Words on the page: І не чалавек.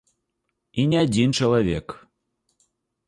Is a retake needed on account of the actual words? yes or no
yes